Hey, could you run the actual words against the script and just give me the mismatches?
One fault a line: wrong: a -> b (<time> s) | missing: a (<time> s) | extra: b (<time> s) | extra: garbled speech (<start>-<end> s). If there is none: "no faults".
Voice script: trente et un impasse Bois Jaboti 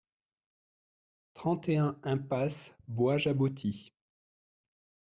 no faults